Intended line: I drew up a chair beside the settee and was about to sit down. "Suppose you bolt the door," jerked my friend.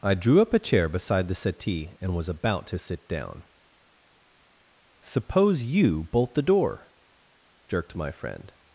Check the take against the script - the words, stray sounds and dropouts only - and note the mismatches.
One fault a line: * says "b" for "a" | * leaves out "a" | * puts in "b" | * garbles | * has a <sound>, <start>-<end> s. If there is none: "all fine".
all fine